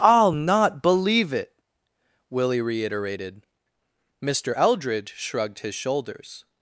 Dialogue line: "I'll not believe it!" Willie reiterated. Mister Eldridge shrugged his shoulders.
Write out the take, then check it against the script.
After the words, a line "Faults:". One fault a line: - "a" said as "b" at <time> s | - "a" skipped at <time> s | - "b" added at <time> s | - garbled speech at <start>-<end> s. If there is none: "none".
"I'll not believe it!" Willie reiterated. Mister Eldridge shrugged his shoulders.
Faults:
none